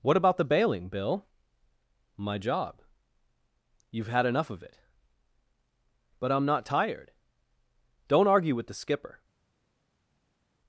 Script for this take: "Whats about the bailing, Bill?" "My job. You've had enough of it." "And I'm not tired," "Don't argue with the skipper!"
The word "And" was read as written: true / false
false